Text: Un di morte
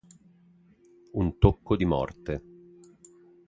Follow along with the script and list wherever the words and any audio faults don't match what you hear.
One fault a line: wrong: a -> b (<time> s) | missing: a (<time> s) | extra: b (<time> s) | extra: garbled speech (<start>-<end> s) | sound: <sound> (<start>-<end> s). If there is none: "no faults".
extra: tocco (1.4 s)